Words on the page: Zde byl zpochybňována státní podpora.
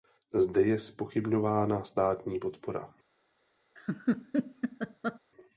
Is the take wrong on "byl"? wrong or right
wrong